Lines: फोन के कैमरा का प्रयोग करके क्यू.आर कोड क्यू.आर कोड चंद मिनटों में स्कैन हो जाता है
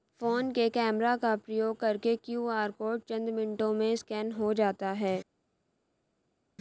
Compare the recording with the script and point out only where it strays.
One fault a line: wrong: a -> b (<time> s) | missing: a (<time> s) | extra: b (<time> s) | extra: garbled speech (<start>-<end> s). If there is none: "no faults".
missing: क्यू.आर कोड (3.0 s)